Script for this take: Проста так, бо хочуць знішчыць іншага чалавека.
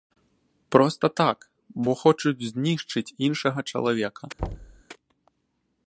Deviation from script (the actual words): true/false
false